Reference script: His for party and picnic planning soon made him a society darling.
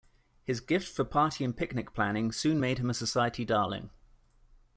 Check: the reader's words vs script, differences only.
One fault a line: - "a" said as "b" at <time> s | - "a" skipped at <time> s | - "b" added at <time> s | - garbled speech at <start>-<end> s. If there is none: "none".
- "gift" added at 0.6 s